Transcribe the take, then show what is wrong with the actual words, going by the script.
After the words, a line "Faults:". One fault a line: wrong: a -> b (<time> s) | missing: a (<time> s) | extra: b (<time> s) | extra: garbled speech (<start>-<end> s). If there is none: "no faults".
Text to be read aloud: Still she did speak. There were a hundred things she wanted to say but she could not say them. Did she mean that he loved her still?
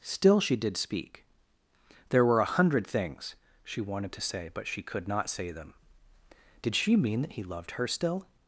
Still she did speak. There were a hundred things she wanted to say but she could not say them. Did she mean that he loved her still?
Faults:
no faults